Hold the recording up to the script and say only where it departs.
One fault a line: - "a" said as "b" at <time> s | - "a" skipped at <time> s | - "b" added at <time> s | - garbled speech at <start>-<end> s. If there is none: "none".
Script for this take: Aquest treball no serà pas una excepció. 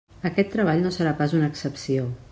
none